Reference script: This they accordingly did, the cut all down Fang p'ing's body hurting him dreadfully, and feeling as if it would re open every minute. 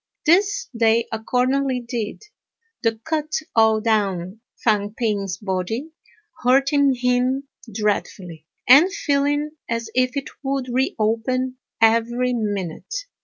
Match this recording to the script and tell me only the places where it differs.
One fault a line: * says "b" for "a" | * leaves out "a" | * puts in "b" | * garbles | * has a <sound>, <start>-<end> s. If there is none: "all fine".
all fine